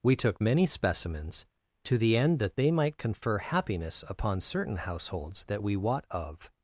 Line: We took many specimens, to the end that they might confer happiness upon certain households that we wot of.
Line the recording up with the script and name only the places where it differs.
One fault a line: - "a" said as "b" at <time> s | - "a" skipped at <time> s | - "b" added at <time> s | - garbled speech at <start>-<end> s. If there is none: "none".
none